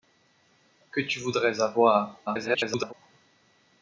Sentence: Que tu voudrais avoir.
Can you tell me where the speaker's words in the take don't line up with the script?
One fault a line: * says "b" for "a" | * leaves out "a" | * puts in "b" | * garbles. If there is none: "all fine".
* garbles